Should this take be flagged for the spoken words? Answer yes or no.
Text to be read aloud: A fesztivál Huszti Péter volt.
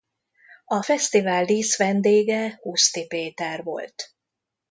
yes